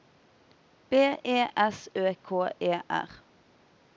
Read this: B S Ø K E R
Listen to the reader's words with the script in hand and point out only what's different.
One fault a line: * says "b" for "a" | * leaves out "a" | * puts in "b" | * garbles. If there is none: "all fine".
* puts in "E"